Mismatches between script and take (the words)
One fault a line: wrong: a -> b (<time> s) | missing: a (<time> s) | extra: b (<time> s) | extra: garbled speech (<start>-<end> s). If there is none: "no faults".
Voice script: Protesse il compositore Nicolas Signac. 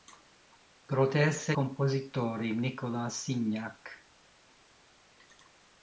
missing: il (1.5 s)